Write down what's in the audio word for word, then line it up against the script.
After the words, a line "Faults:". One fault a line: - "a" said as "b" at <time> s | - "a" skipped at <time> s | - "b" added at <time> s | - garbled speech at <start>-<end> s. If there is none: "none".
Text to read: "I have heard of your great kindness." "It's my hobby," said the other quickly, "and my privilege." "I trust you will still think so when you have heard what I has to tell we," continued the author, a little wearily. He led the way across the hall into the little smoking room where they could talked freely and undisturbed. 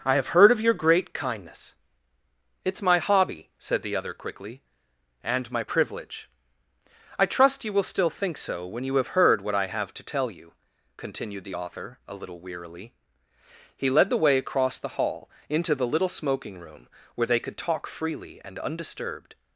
"I have heard of your great kindness." "It's my hobby," said the other quickly, "and my privilege." "I trust you will still think so when you have heard what I have to tell you," continued the author, a little wearily. He led the way across the hall into the little smoking room where they could talk freely and undisturbed.
Faults:
- "has" said as "have" at 9.6 s
- "we" said as "you" at 10.3 s
- "talked" said as "talk" at 17.6 s